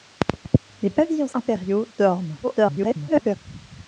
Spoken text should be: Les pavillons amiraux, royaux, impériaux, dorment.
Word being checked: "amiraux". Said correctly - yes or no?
no